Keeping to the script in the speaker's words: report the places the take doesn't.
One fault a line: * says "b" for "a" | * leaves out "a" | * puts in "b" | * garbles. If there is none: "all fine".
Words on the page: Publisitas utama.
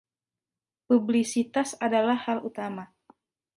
* puts in "adalah hal"